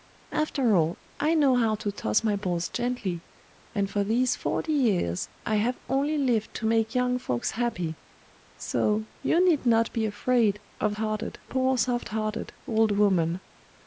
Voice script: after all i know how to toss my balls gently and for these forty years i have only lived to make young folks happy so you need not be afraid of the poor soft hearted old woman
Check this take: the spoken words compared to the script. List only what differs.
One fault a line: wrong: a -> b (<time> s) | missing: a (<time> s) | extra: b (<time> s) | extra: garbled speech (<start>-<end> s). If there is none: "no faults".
wrong: the -> hearted (10.9 s)